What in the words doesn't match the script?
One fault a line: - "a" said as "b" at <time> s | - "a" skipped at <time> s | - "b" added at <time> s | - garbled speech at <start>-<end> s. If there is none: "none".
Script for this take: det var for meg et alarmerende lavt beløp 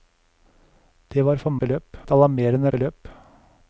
- "meg" said as "beløp" at 1.6 s
- "lavt" skipped at 2.7 s